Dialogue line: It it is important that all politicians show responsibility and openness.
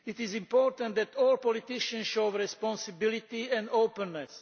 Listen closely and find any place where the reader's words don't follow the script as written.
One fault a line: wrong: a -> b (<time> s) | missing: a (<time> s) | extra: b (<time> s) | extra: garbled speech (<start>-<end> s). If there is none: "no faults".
missing: it (0.2 s)